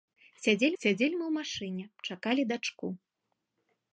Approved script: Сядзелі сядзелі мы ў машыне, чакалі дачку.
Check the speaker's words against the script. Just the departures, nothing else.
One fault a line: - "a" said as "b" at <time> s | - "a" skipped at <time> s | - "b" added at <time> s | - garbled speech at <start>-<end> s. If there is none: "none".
none